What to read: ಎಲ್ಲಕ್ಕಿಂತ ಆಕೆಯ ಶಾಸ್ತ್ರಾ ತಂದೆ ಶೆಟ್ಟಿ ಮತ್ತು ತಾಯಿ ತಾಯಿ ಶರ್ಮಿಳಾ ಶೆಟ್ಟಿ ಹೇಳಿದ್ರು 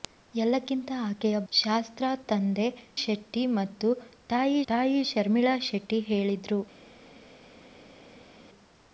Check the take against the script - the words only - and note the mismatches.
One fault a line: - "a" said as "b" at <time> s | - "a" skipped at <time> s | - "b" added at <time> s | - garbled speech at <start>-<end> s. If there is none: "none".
none